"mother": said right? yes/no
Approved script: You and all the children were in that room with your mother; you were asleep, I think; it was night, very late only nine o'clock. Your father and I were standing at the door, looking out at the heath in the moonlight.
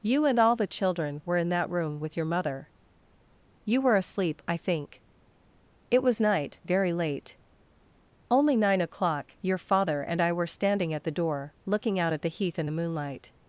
yes